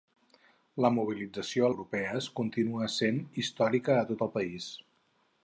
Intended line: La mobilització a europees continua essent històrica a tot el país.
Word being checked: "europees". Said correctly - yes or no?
yes